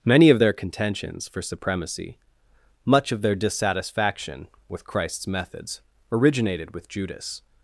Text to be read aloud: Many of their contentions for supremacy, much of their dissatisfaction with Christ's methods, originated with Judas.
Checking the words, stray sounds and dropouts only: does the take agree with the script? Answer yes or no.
yes